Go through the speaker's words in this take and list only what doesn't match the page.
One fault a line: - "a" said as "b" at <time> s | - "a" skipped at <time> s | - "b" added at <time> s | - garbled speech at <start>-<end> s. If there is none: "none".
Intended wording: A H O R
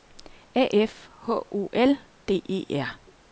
- "F" added at 0.7 s
- "L D E" added at 1.7 s